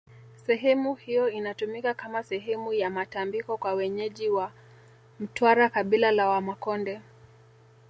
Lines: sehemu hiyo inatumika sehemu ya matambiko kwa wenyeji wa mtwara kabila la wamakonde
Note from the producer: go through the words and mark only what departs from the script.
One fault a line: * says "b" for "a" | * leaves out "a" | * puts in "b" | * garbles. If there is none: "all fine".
* puts in "kama"